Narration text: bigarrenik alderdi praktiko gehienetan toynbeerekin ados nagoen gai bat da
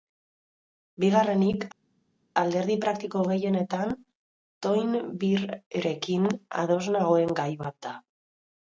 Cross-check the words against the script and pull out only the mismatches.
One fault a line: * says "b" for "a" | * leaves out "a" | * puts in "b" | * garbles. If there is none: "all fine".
all fine